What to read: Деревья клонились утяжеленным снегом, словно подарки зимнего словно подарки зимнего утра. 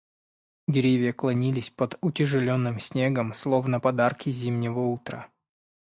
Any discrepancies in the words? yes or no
yes